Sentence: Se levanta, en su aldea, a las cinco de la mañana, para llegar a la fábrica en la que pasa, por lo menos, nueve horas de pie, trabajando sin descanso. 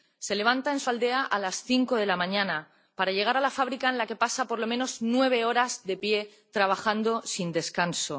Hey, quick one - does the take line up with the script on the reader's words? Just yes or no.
yes